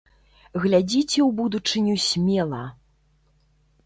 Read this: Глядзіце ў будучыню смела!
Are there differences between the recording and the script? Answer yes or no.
no